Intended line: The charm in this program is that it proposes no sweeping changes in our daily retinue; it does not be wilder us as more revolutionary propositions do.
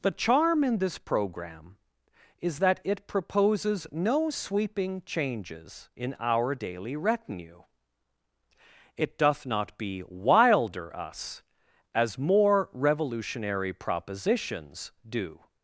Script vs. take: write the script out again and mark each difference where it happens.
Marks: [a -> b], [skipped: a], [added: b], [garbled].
The charm in this program is that it proposes no sweeping changes in our daily retinue; it [does -> doth] not be wilder us as more revolutionary propositions do.